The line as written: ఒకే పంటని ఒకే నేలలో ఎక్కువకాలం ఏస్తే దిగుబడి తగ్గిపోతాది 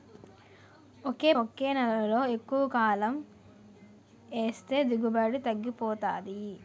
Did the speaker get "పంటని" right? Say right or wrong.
wrong